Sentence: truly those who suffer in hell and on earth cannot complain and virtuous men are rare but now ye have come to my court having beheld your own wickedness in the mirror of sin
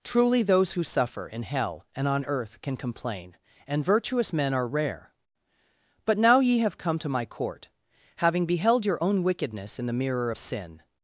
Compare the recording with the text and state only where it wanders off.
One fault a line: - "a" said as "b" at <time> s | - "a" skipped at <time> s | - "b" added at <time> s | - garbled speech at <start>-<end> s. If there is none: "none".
- "cannot" said as "can" at 2.6 s